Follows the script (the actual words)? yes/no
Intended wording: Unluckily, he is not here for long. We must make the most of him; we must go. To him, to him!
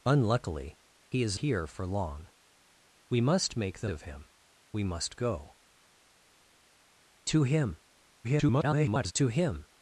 no